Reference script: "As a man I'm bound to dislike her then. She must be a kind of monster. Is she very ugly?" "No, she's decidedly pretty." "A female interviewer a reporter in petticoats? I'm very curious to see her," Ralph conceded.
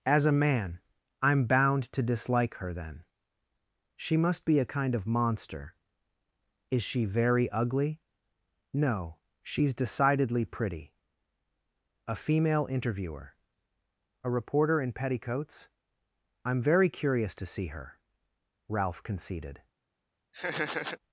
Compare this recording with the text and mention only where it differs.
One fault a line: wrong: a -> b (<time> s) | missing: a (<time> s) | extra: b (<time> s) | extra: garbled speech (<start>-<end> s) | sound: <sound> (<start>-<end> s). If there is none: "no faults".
sound: laugh (20.3-21.0 s)